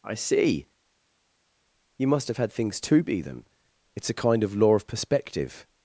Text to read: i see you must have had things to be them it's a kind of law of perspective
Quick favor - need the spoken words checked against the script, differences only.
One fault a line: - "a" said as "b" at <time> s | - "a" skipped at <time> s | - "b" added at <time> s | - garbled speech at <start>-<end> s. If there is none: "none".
none